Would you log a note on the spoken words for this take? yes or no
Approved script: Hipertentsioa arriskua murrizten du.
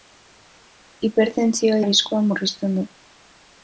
no